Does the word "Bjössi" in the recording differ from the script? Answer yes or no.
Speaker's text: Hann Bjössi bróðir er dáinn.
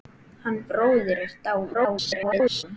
yes